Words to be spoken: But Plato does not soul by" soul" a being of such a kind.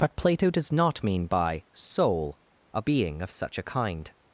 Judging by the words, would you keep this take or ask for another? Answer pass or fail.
fail